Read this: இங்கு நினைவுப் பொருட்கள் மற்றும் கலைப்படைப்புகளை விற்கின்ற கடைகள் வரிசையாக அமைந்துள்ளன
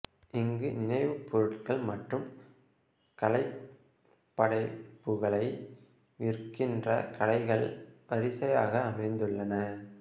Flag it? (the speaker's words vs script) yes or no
no